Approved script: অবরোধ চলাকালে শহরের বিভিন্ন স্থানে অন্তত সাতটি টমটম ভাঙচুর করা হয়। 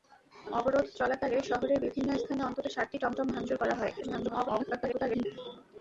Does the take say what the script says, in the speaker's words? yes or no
no